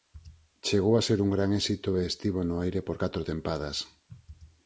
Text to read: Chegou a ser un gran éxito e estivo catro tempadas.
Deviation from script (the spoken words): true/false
true